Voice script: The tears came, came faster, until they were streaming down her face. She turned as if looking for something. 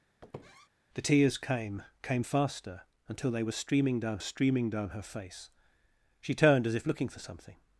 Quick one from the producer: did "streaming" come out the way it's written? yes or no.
yes